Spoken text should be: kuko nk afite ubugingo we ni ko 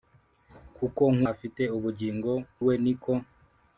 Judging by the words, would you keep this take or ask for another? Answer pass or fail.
pass